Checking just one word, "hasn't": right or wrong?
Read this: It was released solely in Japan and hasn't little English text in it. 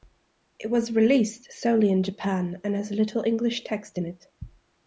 wrong